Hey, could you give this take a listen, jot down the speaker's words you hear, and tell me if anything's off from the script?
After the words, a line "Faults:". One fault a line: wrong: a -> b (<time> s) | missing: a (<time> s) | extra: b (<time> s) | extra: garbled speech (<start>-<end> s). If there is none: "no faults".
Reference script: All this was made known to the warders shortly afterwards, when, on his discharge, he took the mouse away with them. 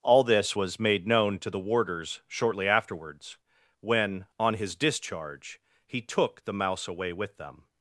All this was made known to the warders shortly afterwards, when, on his discharge, he took the mouse away with them.
Faults:
no faults